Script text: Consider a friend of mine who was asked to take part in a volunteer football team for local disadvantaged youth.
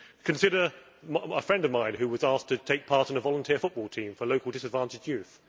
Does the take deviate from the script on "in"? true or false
false